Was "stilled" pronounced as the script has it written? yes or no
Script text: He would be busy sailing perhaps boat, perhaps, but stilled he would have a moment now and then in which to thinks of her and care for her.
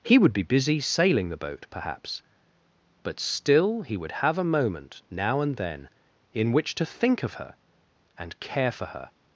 no